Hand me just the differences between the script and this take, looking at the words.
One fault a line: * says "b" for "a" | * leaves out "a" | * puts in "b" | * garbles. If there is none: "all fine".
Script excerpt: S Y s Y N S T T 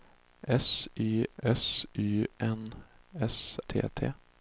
all fine